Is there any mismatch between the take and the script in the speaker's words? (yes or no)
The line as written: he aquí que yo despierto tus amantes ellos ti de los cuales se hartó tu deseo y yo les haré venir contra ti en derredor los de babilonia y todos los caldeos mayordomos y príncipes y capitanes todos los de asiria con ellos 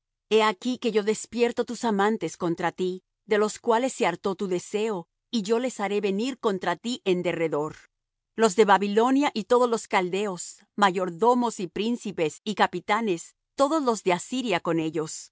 yes